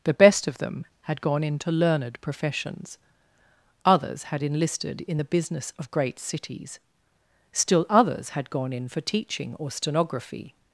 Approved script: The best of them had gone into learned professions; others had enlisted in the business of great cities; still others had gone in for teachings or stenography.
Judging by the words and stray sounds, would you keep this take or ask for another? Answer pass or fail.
fail